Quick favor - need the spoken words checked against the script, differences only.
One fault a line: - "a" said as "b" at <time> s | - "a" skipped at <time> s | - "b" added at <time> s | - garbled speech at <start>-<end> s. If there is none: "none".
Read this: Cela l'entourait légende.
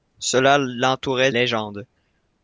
none